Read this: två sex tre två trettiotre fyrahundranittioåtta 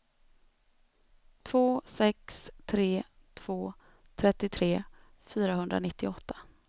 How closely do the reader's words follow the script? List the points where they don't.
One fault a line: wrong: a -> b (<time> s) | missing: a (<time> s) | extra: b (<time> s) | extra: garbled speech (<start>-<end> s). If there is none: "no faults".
no faults